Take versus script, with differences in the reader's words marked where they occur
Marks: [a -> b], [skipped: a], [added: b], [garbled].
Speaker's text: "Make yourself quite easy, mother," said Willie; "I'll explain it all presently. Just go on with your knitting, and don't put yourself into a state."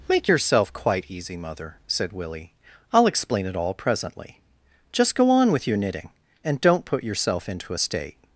"Make yourself quite easy, mother," said Willie; "I'll explain it all presently. Just go on with your knitting, and don't put yourself into a state."